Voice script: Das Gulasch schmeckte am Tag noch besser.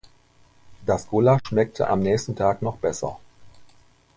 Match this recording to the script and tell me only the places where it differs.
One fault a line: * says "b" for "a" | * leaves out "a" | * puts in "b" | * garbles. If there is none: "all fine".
* puts in "nächsten"